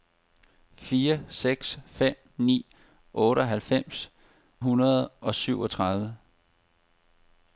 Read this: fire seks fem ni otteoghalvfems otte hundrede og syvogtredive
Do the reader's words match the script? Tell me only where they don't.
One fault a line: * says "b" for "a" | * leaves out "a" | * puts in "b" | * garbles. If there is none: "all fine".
* leaves out "otte"